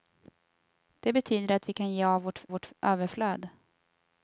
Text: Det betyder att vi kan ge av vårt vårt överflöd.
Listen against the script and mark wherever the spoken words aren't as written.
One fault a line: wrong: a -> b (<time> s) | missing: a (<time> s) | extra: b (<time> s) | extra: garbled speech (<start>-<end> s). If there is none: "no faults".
no faults